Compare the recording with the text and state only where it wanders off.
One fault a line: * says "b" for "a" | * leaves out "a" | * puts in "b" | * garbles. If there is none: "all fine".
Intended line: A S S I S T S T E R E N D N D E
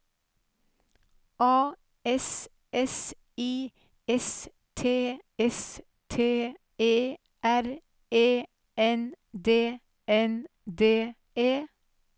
all fine